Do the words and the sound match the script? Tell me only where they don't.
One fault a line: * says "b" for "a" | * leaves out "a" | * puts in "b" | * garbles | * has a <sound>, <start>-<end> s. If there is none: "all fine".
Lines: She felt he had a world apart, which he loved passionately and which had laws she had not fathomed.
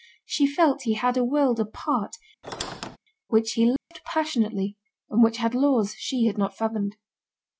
* has a squeak, 2.4-3.0 s
* has a dropout, 3.8-3.9 s